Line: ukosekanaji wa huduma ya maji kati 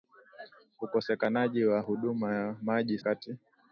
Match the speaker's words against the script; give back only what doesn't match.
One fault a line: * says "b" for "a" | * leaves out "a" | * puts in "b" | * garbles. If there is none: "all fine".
all fine